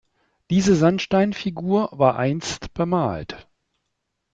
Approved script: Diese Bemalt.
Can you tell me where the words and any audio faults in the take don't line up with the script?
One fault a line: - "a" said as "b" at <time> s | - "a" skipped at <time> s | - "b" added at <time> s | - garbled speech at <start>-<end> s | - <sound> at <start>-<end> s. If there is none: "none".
- "Sandsteinfigur war einst" added at 0.8 s